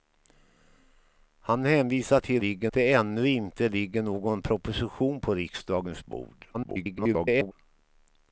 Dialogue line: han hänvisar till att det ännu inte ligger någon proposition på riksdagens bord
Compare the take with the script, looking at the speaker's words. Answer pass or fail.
fail